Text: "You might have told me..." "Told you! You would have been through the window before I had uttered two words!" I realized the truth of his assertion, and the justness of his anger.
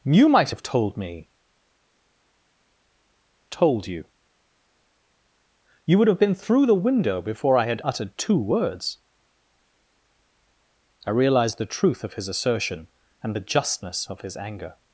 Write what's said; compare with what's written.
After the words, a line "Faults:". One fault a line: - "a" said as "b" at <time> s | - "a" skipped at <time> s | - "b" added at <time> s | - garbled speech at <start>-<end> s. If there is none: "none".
"You might have told me..." "Told you! You would have been through the window before I had uttered two words!" I realized the truth of his assertion, and the justness of his anger.
Faults:
none